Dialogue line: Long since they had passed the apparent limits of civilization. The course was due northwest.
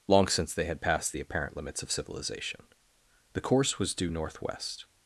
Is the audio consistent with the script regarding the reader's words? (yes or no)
yes